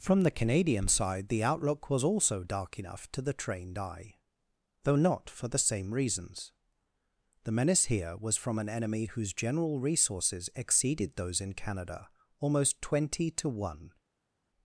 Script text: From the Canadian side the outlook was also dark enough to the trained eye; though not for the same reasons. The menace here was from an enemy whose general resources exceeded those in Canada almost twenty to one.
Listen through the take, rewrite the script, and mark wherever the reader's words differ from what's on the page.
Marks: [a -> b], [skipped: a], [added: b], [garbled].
From the Canadian side the outlook was also dark enough to the trained eye; though not for the same reasons. The menace here was from an enemy whose general resources exceeded those in Canada almost twenty to one.